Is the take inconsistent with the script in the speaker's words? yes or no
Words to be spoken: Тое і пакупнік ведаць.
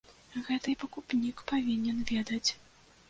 yes